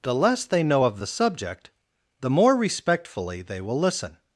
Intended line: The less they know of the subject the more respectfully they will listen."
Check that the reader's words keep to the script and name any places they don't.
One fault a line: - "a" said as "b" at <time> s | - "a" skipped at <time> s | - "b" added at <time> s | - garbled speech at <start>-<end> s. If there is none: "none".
none